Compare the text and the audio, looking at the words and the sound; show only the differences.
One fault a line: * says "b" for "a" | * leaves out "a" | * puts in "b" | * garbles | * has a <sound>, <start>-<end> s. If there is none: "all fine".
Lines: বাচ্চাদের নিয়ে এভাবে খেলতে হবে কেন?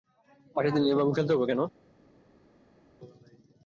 all fine